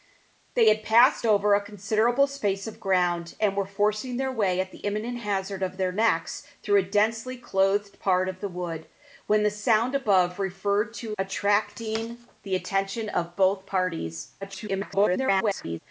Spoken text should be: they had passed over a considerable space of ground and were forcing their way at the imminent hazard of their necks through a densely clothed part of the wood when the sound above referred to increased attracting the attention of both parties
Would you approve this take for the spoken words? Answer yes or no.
no